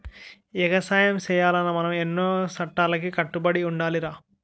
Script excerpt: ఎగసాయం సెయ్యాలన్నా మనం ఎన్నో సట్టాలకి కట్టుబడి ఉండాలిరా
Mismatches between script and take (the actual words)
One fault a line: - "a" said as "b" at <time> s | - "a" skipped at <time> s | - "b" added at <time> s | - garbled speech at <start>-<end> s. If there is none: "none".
none